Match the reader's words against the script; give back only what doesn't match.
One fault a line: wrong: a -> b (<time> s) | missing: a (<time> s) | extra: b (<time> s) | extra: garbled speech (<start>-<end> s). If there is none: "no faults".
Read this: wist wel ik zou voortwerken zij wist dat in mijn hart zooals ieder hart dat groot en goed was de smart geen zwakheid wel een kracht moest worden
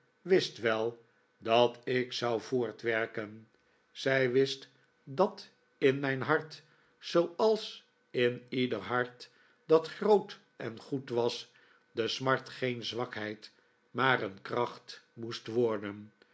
extra: dat (1.4 s)
extra: in (8.1 s)
wrong: wel -> maar (13.9 s)